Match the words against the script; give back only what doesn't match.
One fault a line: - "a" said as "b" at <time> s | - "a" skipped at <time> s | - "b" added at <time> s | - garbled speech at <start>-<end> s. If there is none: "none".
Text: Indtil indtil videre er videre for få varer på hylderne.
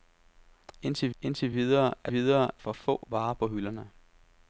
none